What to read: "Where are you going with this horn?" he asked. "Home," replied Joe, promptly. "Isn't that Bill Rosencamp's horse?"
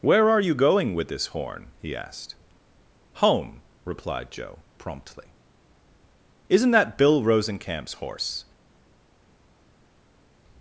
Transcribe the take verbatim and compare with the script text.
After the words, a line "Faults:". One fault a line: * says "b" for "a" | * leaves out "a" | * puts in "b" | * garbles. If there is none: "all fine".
"Where are you going with this horn?" he asked. "Home," replied Joe, promptly. "Isn't that Bill Rosencamp's horse?"
Faults:
all fine